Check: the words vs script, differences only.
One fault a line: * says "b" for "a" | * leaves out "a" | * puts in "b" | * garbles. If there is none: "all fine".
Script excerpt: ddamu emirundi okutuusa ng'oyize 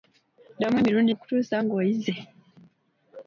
all fine